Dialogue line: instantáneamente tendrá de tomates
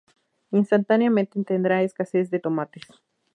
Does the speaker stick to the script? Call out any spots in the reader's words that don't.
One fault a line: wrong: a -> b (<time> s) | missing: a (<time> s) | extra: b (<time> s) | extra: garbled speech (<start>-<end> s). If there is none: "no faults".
extra: escasez (1.8 s)